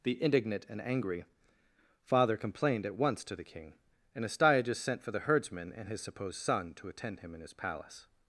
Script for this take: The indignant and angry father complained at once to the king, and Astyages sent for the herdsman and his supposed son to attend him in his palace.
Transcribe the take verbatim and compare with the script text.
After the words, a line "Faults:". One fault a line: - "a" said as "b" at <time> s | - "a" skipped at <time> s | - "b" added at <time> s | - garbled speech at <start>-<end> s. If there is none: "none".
The indignant and angry father complained at once to the king, and Astyages sent for the herdsman and his supposed son to attend him in his palace.
Faults:
none